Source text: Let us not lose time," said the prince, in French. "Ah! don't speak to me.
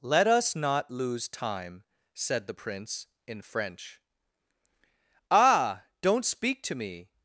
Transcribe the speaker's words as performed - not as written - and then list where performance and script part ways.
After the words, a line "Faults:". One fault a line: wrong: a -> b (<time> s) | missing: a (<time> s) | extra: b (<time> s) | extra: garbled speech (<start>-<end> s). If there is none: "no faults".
Let us not lose time," said the prince, in French. "Ah! don't speak to me.
Faults:
no faults